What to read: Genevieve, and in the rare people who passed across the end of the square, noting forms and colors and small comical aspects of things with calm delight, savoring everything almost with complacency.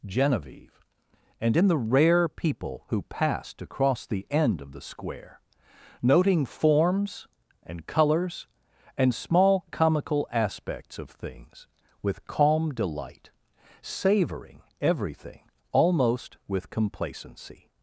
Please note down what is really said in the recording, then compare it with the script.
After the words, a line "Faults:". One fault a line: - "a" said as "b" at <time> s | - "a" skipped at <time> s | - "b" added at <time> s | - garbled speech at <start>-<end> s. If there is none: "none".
Genevieve, and in the rare people who passed across the end of the square, noting forms and colors and small comical aspects of things with calm delight, savoring everything almost with complacency.
Faults:
none